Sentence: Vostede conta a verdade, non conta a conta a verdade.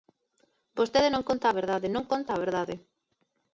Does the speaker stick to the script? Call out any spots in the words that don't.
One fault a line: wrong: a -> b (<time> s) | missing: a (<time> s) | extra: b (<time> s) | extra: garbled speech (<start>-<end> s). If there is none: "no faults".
extra: non (1.1 s)
missing: conta a (2.4 s)